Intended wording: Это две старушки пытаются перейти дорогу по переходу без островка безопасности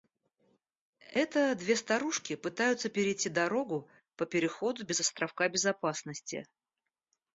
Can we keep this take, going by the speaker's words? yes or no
yes